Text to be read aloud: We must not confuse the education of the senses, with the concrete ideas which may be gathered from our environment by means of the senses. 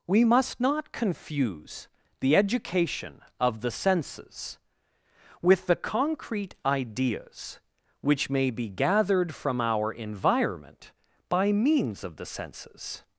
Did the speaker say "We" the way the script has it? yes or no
yes